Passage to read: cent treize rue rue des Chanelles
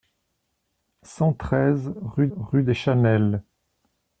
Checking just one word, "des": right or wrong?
right